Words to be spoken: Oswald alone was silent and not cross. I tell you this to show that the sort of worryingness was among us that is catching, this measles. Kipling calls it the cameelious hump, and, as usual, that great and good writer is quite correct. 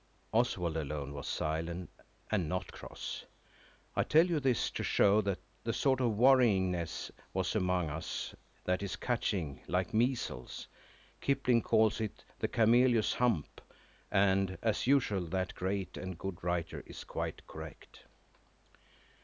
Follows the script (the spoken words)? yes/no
no